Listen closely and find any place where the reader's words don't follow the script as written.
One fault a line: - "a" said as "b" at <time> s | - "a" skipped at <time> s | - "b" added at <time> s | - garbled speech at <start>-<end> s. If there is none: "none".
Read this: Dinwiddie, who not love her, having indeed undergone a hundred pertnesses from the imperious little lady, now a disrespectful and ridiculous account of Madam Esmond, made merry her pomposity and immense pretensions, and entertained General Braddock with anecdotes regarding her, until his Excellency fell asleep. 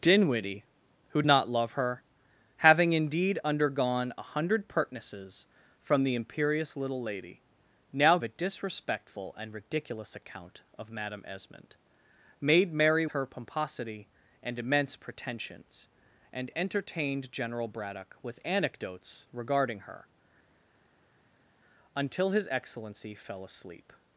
none